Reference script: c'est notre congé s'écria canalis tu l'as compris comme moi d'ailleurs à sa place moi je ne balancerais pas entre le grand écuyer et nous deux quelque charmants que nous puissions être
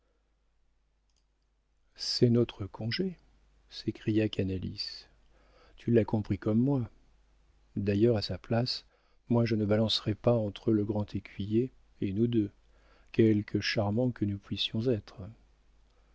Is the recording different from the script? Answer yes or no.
no